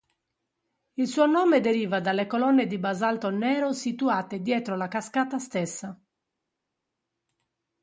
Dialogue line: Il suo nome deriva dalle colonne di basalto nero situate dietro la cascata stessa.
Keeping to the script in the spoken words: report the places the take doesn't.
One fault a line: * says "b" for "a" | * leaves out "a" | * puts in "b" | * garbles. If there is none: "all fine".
all fine